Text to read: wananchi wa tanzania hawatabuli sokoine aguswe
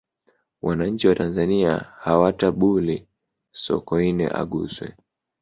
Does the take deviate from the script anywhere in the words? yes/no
no